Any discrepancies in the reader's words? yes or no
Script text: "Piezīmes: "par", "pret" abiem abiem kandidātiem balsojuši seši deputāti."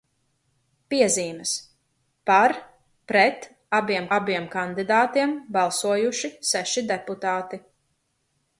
no